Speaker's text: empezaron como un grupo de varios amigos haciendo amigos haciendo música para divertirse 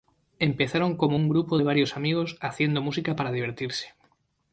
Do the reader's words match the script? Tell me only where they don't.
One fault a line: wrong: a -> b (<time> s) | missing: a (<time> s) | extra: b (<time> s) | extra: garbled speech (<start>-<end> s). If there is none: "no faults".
missing: amigos haciendo (2.8 s)